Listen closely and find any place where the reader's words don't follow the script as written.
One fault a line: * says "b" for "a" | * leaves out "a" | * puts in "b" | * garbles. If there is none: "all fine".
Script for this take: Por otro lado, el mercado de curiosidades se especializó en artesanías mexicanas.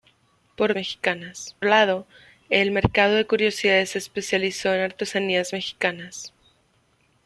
* says "mexicanas" for "otro"